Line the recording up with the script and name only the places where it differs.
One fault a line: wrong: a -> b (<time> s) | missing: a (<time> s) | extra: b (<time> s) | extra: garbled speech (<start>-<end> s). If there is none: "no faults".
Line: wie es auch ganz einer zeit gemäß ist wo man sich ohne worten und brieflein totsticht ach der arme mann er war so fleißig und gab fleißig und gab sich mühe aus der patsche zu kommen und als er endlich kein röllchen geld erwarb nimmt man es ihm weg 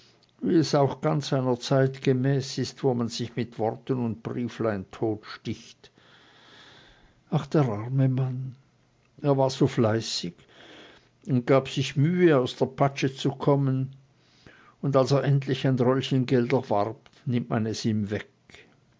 wrong: ohne -> mit (3.4 s)
missing: fleißig und gab (11.7 s)
wrong: kein -> ein (15.7 s)